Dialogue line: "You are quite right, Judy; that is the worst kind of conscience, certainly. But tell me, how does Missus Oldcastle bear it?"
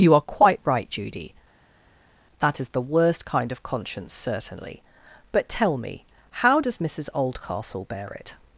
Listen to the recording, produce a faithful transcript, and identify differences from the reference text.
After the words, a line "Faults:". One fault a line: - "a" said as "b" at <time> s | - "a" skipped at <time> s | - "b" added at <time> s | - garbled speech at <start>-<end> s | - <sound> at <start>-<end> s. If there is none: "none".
"You are quite right, Judy; that is the worst kind of conscience, certainly. But tell me, how does Missus Oldcastle bear it?"
Faults:
none